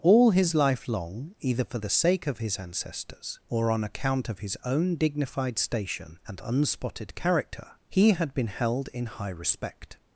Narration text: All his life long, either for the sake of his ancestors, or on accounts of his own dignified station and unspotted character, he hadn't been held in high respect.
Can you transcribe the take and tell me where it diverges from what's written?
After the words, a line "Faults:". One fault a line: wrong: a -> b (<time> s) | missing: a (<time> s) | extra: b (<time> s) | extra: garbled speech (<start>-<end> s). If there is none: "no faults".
All his life long, either for the sake of his ancestors, or on account of his own dignified station and unspotted character, he had been held in high respect.
Faults:
wrong: accounts -> account (3.8 s)
wrong: hadn't -> had (8.1 s)